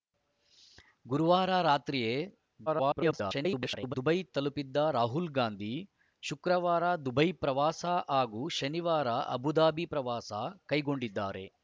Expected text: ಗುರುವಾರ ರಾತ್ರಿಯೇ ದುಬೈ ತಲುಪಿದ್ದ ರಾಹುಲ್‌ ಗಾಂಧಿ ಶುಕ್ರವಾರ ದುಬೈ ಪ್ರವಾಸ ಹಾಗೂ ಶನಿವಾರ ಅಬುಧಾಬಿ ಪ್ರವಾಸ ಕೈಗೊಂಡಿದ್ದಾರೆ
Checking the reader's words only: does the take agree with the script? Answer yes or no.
no